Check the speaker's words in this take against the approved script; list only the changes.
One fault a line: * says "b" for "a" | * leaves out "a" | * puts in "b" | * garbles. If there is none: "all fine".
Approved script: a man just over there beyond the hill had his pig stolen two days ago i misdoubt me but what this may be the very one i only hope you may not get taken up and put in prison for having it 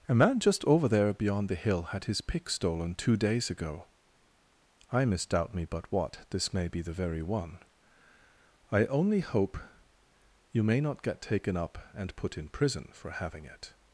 * says "pick" for "pig"